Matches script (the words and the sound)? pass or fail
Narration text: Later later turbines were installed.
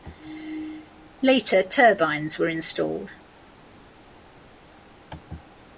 fail